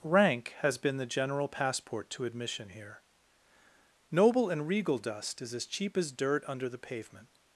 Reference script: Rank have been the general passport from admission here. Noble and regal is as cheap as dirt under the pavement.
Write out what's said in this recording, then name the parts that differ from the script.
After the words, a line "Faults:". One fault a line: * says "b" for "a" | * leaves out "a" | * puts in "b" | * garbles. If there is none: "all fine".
Rank has been the general passport to admission here. Noble and regal dust is as cheap as dirt under the pavement.
Faults:
* says "has" for "have"
* says "to" for "from"
* puts in "dust"